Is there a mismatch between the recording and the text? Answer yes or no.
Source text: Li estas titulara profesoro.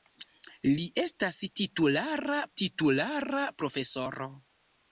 yes